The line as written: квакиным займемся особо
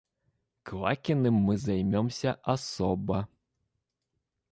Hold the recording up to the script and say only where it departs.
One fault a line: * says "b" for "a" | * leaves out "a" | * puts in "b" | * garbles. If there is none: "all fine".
* puts in "мы"